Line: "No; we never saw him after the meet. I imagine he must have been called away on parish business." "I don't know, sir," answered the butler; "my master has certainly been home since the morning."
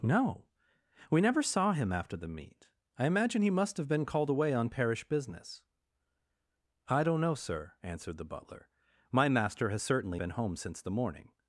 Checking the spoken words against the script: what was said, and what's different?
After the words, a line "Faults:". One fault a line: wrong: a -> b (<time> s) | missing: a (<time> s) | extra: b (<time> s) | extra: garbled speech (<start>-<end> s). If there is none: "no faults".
"No; we never saw him after the meet. I imagine he must have been called away on parish business." "I don't know, sir," answered the butler; "my master has certainly been home since the morning."
Faults:
no faults